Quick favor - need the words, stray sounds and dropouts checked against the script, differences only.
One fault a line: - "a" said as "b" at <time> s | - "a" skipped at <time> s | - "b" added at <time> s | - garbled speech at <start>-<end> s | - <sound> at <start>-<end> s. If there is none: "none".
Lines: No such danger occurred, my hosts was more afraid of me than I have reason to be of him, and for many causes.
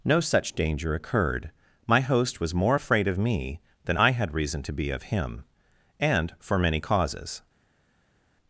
- "hosts" said as "host" at 2.0 s
- "have" said as "had" at 4.1 s